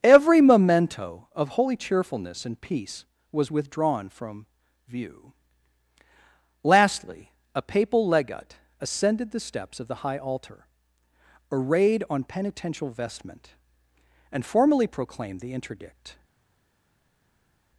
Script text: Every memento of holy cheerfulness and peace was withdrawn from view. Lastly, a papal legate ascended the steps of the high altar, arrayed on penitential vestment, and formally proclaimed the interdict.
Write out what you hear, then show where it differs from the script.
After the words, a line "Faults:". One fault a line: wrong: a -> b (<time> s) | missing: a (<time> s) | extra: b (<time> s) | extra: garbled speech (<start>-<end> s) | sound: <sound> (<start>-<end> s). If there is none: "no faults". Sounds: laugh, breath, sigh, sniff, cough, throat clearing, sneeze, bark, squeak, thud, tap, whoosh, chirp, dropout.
Every memento of holy cheerfulness and peace was withdrawn from view. Lastly, a papal legate ascended the steps of the high altar, arrayed on penitential vestment, and formally proclaimed the interdict.
Faults:
no faults